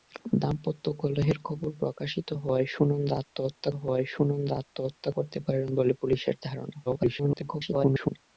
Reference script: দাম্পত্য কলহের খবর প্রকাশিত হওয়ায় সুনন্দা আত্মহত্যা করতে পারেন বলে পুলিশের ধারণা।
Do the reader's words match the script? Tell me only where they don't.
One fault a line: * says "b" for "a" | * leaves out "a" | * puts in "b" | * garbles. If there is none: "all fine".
* puts in "হওয়ায় সুনন্দা আত্মহত্যা"
* garbles